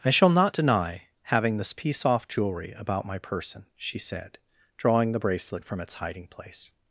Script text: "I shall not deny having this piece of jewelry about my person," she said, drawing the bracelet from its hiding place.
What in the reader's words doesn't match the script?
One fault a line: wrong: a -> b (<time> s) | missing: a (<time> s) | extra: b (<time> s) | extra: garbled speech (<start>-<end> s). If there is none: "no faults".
wrong: of -> off (2.0 s)